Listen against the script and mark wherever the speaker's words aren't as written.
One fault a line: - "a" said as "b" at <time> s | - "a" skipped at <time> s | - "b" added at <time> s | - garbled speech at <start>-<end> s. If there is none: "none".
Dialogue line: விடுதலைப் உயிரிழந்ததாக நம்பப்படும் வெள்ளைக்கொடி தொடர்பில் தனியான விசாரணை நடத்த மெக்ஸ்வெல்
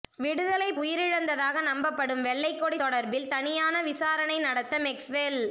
none